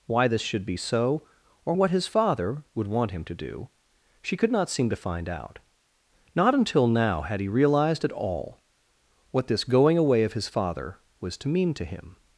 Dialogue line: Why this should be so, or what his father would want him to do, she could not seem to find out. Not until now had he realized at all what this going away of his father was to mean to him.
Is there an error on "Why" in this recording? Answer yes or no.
no